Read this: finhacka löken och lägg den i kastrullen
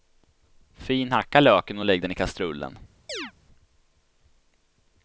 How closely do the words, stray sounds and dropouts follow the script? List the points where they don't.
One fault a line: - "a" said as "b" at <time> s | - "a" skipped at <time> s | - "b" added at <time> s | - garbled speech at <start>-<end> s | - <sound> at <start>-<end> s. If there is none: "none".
- chirp at 3.1-3.3 s